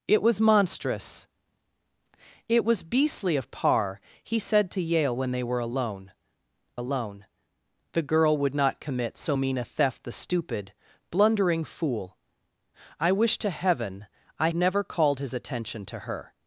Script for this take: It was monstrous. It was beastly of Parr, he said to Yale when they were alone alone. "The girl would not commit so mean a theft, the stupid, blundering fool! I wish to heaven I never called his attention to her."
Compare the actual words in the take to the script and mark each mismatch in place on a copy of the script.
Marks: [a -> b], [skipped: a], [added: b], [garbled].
It was monstrous. It was beastly of Parr, he said to Yale when they were alone alone. "The girl would not commit so mean a theft, the stupid, blundering fool! I wish to heaven I never called his attention to her."